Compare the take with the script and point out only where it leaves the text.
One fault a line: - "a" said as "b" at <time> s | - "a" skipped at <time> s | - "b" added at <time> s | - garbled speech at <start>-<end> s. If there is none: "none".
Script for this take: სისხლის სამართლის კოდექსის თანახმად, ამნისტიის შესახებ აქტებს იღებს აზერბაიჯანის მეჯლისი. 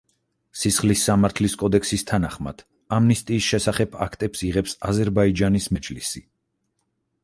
none